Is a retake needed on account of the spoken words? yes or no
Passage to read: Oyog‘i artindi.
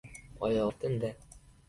no